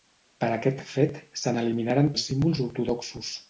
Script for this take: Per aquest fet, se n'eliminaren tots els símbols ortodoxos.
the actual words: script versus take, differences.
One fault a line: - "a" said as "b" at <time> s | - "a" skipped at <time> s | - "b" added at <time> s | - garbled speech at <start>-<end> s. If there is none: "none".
- "tots" skipped at 2.1 s